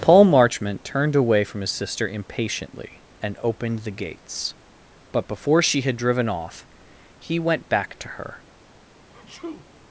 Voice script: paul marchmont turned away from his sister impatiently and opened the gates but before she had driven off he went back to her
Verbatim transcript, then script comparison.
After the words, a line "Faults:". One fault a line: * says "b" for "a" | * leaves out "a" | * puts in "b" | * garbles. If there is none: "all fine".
paul marchmont turned away from his sister impatiently and opened the gates but before she had driven off he went back to her
Faults:
all fine